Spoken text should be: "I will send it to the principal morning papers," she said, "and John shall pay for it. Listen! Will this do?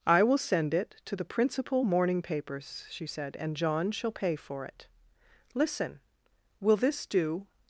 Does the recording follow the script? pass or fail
pass